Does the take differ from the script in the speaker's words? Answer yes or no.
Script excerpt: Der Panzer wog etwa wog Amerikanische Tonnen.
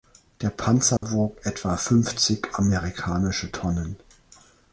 yes